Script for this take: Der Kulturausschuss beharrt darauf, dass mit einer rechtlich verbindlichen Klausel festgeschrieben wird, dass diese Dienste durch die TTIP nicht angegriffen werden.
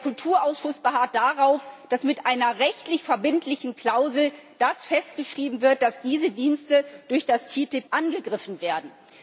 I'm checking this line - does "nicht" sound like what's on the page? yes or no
no